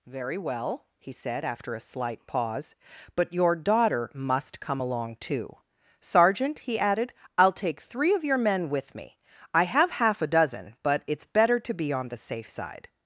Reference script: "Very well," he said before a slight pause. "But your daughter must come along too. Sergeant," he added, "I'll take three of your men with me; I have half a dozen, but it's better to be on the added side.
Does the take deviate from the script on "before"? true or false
true